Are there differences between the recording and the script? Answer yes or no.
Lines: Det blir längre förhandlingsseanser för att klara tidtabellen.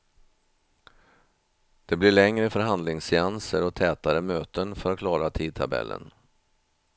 yes